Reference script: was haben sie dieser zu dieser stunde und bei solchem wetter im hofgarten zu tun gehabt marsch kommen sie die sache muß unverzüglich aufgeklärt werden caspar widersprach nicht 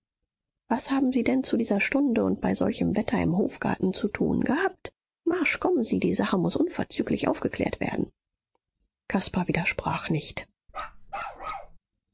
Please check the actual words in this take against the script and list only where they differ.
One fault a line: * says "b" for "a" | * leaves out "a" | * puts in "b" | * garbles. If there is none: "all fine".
* says "denn" for "dieser"